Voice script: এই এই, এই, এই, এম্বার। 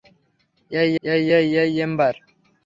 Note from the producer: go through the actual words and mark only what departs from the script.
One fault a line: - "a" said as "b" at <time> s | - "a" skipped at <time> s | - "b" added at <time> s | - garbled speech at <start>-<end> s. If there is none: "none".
none